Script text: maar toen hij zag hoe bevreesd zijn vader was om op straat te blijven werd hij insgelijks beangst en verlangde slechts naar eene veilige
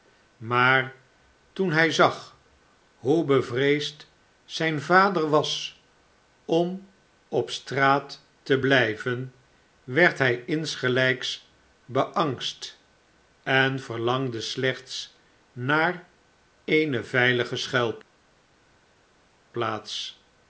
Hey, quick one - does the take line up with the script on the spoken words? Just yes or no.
yes